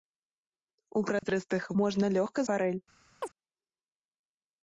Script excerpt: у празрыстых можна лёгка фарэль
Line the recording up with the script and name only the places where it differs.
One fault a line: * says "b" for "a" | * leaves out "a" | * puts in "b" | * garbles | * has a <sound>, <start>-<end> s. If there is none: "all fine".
* has a dropout, 1.2-1.2 s
* has a chirp, 3.2-3.3 s